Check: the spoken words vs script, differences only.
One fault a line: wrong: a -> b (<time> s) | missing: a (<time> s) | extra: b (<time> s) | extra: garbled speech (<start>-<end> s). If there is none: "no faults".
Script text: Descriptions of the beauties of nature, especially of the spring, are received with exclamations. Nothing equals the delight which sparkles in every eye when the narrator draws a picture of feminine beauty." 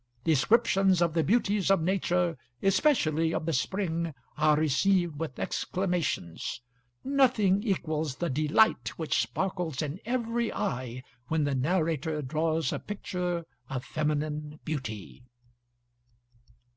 no faults